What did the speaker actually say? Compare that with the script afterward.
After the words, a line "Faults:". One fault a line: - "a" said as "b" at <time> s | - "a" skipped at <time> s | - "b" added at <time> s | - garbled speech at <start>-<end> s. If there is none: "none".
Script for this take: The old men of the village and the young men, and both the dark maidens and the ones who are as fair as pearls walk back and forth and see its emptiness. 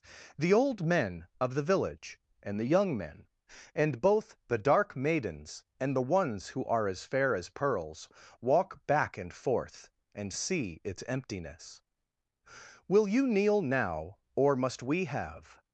The old men of the village and the young men, and both the dark maidens and the ones who are as fair as pearls walk back and forth and see its emptiness. Will you kneel now, or must we have
Faults:
- "Will you kneel now or must we have" added at 12.9 s